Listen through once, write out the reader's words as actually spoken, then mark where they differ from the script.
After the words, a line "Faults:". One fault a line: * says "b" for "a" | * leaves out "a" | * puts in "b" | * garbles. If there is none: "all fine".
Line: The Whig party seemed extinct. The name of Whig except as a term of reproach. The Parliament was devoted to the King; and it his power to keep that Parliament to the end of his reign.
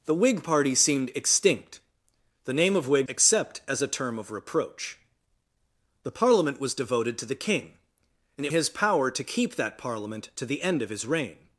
The Whig party seemed extinct. The name of Whig except as a term of reproach. The Parliament was devoted to the King; and it his power to keep that Parliament to the end of his reign.
Faults:
all fine